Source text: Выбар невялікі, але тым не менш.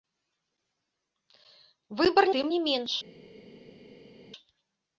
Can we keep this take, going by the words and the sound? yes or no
no